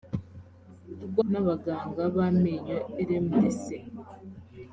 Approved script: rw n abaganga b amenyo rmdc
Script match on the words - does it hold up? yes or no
yes